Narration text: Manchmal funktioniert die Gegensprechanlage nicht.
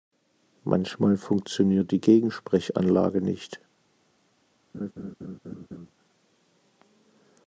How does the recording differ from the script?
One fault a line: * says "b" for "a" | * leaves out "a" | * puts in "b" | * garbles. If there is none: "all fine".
all fine